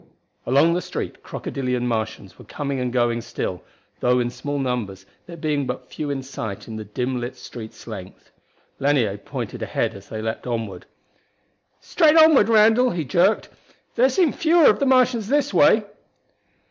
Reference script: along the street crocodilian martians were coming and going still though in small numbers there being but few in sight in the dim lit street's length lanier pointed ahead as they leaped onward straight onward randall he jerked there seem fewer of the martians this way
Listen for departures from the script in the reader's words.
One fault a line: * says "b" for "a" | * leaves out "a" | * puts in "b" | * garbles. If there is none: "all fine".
all fine